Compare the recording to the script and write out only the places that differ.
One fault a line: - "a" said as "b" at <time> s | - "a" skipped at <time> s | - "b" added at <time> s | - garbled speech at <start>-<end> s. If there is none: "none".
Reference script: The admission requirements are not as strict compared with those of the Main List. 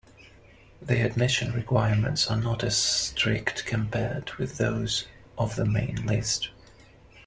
none